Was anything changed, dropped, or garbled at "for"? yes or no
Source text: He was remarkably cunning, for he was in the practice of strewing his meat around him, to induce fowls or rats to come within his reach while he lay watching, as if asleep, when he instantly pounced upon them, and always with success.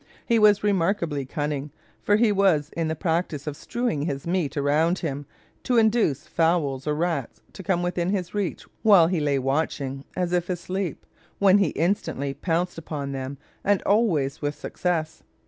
no